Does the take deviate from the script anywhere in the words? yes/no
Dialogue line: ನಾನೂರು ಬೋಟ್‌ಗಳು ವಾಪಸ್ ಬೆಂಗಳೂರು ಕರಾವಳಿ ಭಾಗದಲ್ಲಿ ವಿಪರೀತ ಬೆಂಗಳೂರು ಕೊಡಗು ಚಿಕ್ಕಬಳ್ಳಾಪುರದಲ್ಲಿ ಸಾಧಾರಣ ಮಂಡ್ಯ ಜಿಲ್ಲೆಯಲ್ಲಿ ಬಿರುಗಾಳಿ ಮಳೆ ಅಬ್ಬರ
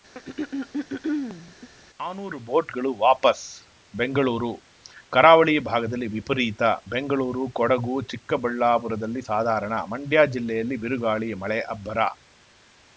no